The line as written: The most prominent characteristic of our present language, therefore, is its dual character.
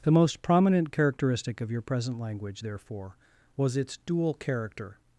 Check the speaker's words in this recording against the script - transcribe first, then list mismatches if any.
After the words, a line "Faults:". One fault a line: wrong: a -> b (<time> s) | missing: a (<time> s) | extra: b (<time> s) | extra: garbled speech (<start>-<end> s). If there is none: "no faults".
The most prominent characteristic of your present language, therefore, was its dual character.
Faults:
wrong: our -> your (1.7 s)
wrong: is -> was (3.6 s)